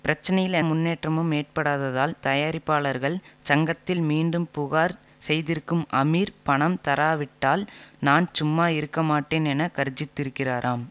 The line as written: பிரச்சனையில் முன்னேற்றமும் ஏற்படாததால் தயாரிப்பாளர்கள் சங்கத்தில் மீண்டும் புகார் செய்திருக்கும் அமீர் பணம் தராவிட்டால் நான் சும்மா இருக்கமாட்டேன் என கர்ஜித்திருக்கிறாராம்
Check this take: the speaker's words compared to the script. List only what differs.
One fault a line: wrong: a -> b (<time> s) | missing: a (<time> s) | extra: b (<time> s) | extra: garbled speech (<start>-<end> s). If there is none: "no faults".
no faults